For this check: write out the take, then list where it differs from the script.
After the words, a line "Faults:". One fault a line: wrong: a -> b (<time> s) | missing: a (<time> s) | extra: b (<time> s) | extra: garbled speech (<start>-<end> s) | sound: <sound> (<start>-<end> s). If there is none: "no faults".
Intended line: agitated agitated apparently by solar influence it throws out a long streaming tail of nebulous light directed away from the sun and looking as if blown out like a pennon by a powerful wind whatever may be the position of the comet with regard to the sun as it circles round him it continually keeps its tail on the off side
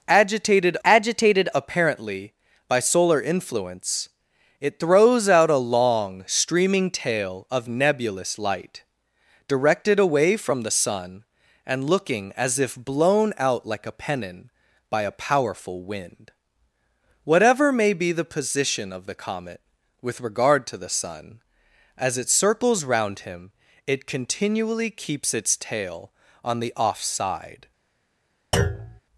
agitated agitated apparently by solar influence it throws out a long streaming tail of nebulous light directed away from the sun and looking as if blown out like a pennon by a powerful wind whatever may be the position of the comet with regard to the sun as it circles round him it continually keeps its tail on the off side
Faults:
sound: thud (28.5-29.0 s)